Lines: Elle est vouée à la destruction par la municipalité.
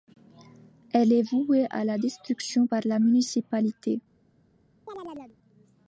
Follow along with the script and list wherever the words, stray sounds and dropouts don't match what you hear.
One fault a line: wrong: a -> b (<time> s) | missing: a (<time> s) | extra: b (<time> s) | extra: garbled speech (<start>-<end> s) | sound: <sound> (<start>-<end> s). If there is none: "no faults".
sound: chirp (4.9-5.4 s)